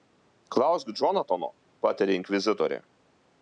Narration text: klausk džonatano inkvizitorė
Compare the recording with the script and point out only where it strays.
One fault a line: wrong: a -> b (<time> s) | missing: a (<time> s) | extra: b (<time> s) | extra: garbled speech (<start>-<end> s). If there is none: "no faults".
extra: patarė (1.9 s)